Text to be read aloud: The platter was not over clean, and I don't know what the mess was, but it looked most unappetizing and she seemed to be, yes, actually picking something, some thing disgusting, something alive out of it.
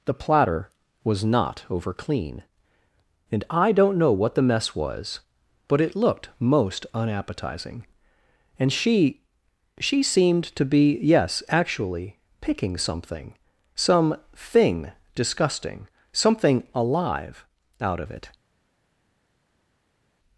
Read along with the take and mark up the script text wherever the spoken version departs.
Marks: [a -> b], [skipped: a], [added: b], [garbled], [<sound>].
The platter was not over clean, and I don't know what the mess was, but it looked most unappetizing and she [added: she] seemed to be, yes, actually picking something, some thing disgusting, something alive out of it.